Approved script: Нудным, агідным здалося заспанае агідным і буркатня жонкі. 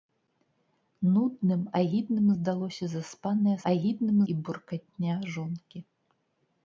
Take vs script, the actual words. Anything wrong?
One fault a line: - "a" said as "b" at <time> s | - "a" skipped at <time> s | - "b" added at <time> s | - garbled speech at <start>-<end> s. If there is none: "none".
none